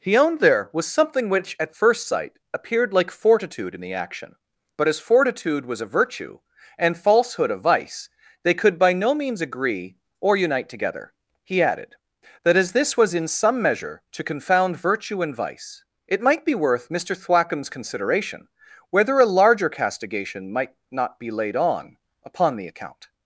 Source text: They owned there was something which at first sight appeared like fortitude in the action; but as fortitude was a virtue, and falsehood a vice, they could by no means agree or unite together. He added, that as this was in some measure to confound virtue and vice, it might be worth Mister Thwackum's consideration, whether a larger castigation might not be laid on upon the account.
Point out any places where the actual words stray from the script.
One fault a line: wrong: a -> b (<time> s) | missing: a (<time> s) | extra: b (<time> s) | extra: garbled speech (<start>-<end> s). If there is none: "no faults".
wrong: They -> He (0.0 s)